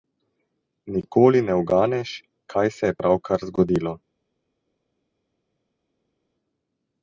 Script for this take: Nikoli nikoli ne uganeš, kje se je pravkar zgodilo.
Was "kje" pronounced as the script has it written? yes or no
no